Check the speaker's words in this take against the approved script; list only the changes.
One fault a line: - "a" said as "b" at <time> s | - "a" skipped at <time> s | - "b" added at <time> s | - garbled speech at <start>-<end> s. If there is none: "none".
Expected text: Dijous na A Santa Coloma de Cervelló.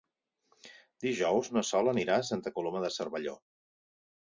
- "Sol anirà" added at 1.7 s